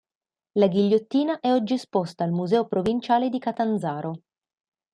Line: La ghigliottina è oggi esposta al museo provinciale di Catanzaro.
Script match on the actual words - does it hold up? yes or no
yes